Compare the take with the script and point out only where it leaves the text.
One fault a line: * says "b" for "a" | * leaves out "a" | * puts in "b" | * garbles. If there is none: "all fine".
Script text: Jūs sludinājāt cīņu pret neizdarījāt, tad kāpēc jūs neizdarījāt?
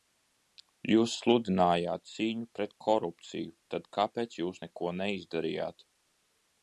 * says "korupciju" for "neizdarījāt"
* puts in "neko"